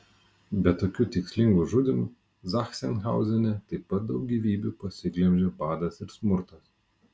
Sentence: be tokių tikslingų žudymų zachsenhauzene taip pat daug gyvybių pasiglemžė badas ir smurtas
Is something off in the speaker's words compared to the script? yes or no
no